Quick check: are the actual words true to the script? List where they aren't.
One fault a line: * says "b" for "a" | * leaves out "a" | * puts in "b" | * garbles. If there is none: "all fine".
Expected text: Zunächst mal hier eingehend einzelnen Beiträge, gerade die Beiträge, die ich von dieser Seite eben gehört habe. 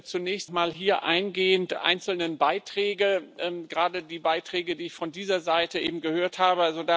all fine